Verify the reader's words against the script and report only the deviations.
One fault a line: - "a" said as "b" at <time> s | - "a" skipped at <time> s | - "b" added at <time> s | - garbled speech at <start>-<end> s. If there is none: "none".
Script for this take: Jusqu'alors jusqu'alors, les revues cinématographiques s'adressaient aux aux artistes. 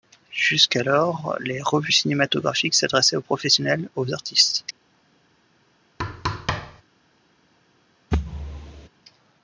- "jusqu'alors" skipped at 1.4 s
- "professionnels" added at 3.2 s